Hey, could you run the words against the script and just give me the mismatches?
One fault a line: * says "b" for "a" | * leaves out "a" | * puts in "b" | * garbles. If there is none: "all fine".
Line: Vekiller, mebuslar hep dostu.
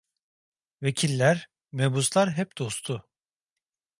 all fine